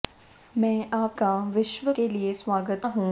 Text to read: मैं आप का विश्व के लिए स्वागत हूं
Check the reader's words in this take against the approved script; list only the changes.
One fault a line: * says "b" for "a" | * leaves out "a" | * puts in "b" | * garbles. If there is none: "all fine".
all fine